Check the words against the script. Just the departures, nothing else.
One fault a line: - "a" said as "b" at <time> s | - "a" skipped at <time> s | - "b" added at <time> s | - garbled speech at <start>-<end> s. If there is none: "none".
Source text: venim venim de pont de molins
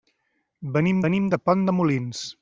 none